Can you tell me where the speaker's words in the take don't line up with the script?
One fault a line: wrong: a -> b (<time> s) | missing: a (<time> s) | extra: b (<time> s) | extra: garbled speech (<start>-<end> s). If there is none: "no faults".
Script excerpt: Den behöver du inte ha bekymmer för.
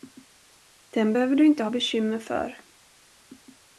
no faults